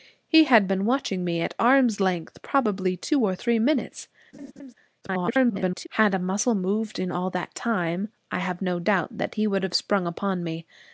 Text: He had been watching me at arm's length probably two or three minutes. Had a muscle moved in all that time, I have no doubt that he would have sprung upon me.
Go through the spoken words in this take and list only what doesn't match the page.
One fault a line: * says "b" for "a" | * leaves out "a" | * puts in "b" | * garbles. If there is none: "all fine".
* garbles